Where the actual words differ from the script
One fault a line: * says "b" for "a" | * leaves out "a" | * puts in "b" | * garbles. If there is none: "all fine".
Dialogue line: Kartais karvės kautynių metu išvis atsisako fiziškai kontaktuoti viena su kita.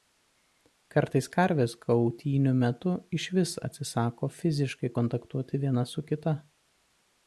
all fine